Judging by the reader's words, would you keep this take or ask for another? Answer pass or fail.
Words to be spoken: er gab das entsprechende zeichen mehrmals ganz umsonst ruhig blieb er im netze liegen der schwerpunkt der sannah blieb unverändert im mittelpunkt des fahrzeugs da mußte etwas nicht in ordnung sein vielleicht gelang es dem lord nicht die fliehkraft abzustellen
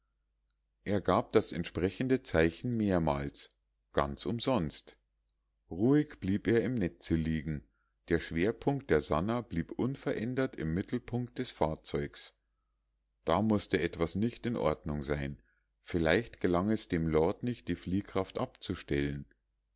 pass